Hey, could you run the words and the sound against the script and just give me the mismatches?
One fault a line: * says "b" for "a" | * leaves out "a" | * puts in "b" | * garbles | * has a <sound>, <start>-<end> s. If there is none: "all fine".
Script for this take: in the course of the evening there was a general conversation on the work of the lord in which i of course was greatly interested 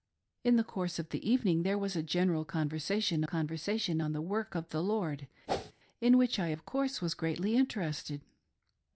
* puts in "conversation"
* has a whoosh, 5.5-5.7 s